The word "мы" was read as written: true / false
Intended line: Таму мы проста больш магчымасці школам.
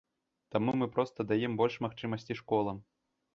true